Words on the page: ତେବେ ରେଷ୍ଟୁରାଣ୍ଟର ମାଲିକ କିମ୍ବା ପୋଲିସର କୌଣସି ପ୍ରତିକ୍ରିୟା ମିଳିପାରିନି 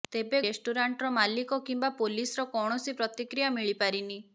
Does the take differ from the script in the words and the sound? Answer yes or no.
no